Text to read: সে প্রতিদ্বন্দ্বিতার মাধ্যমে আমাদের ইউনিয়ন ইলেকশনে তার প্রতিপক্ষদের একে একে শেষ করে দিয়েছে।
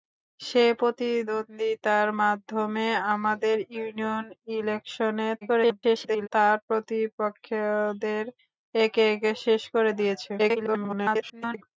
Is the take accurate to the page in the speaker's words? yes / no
no